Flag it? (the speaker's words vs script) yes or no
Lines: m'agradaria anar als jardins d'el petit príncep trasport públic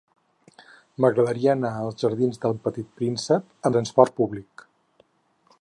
no